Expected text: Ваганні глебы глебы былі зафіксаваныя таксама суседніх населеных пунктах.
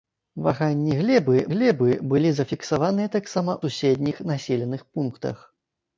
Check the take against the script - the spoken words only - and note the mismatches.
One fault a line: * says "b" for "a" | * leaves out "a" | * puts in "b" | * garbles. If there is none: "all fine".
all fine